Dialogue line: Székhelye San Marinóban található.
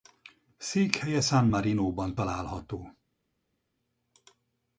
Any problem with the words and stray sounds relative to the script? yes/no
no